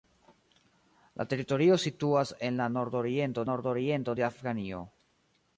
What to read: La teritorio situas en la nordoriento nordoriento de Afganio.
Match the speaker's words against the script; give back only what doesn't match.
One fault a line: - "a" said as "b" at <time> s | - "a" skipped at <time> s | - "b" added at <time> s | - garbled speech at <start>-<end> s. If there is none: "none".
none